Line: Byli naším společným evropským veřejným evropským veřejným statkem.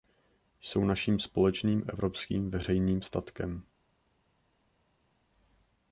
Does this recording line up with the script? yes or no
no